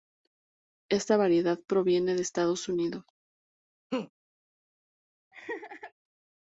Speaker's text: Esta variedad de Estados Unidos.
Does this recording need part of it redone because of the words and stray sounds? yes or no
yes